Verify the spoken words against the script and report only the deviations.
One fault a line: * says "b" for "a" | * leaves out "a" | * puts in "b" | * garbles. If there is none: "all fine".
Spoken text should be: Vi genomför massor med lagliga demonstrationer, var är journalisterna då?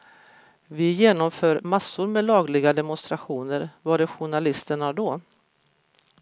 all fine